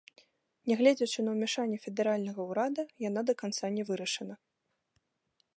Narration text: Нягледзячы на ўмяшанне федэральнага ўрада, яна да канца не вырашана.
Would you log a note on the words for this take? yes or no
no